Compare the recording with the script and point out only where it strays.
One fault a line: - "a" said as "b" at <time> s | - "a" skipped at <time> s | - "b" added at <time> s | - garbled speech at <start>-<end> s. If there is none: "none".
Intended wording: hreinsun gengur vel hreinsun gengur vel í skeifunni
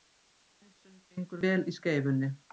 - "hreinsun gengur vel" skipped at 1.6 s